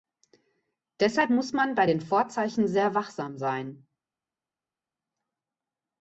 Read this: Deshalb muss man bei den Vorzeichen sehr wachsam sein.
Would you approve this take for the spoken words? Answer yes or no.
yes